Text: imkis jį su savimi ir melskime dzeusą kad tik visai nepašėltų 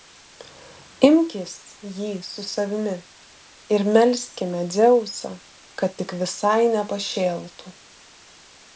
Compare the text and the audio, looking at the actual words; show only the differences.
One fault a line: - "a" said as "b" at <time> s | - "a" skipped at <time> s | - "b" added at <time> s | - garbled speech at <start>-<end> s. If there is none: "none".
none